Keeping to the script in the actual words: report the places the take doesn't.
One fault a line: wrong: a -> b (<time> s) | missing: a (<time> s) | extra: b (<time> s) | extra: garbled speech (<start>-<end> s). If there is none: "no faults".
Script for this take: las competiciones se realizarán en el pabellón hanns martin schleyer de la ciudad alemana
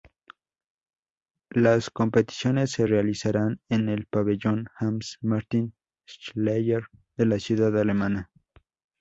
no faults